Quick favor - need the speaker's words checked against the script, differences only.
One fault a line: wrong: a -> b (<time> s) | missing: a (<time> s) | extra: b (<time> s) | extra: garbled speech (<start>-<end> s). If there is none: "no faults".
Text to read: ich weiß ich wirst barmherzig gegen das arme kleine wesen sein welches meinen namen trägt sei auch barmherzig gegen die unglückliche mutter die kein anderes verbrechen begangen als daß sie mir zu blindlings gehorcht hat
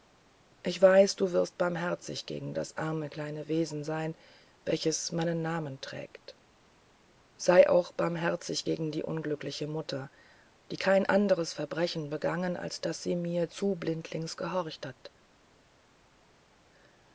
wrong: ich -> du (1.1 s)